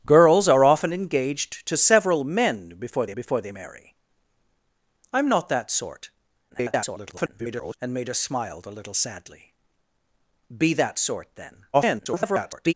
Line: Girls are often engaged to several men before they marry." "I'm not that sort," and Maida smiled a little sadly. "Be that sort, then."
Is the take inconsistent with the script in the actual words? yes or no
yes